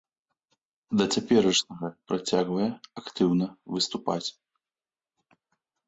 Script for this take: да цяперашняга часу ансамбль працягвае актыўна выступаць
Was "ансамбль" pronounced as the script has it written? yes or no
no